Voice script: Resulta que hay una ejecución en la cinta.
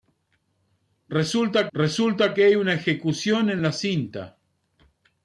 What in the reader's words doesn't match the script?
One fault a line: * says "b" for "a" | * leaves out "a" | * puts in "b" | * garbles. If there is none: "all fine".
* puts in "resulta"